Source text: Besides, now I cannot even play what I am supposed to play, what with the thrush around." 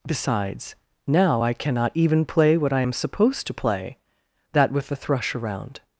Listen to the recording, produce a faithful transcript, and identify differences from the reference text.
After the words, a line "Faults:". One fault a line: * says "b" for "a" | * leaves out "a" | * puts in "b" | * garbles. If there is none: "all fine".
Besides, now I cannot even play what I am supposed to play, that with the thrush around."
Faults:
* says "that" for "what"